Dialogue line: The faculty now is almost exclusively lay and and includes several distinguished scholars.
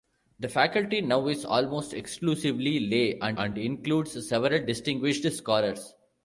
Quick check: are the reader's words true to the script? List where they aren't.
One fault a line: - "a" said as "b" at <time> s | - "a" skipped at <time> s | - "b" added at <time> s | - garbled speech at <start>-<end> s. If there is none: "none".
none